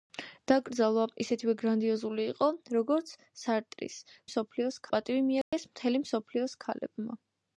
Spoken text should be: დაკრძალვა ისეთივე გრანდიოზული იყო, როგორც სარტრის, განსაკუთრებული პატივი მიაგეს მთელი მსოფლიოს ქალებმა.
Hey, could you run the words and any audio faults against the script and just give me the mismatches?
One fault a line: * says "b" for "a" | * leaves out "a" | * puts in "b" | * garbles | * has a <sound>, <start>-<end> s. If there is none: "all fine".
* says "მსოფლიოს" for "განსაკუთრებული"
* has a dropout, 5.4-5.5 s